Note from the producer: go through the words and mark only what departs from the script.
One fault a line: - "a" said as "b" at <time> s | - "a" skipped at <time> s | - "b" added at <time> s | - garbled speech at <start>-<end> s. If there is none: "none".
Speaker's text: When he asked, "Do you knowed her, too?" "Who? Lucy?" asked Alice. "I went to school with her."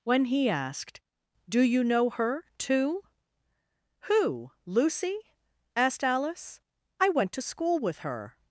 - "knowed" said as "know" at 1.8 s